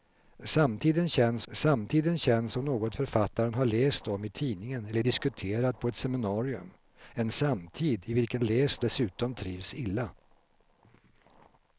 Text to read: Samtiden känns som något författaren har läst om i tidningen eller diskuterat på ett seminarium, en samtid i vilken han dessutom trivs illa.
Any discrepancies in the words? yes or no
yes